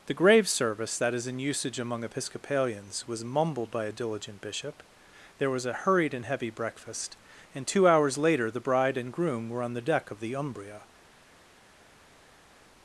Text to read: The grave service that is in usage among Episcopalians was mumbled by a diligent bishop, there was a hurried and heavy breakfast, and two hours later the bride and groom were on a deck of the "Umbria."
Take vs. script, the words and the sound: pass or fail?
fail